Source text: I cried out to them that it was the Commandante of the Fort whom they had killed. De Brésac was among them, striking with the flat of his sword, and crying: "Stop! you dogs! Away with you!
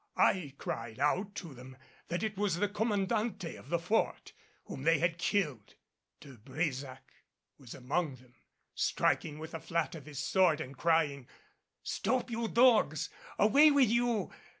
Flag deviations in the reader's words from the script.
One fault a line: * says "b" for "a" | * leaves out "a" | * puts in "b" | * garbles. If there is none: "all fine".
all fine